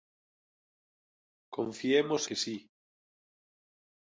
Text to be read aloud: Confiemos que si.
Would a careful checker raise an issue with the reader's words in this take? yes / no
no